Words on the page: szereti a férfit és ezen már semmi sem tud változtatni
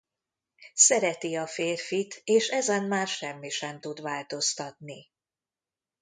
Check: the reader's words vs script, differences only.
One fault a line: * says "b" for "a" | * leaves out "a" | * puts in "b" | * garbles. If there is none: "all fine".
all fine